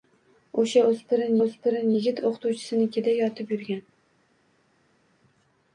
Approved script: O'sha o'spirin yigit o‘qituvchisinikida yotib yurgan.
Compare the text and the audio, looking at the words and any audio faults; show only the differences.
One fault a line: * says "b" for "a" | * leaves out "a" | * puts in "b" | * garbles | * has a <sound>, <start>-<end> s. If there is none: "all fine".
* puts in "o'spirin"